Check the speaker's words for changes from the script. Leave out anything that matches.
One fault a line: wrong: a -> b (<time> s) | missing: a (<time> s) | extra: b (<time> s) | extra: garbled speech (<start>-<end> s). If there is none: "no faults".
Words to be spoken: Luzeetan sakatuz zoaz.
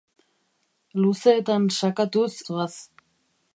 no faults